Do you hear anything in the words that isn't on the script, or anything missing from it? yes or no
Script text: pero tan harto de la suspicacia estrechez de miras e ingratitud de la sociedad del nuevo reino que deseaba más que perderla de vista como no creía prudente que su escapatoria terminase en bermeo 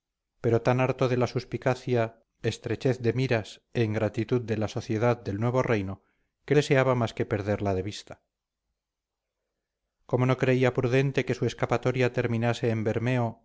no